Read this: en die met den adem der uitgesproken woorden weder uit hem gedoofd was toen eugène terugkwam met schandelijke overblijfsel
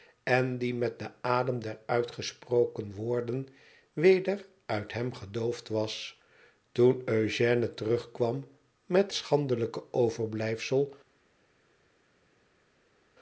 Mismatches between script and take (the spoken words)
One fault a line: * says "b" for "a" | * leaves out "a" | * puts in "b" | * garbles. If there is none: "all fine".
all fine